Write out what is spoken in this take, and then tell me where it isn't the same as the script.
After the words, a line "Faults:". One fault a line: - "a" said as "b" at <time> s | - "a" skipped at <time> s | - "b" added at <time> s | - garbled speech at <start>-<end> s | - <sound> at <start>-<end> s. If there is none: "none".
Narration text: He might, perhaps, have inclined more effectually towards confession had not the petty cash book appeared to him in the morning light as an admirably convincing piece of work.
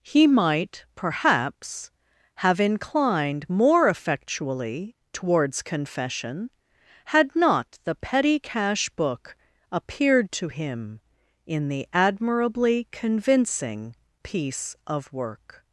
He might, perhaps, have inclined more effectually towards confession had not the petty cash book appeared to him in the admirably convincing piece of work.
Faults:
- "morning light as an" skipped at 11.9 s